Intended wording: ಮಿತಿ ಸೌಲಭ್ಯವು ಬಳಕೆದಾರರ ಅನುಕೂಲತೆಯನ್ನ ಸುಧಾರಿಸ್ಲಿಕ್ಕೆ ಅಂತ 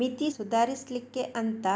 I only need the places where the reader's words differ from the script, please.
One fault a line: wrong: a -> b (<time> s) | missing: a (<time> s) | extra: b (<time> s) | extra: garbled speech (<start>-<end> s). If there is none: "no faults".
missing: ಸೌಲಭ್ಯವು ಬಳಕೆದಾರರ ಅನುಕೂಲತೆಯನ್ನ (0.3 s)